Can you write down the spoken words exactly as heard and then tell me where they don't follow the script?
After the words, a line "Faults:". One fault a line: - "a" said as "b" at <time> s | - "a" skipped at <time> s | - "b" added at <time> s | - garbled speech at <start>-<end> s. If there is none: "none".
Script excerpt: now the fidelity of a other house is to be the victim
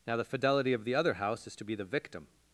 now the fidelity of the other house is to be the victim
Faults:
- "a" said as "the" at 0.8 s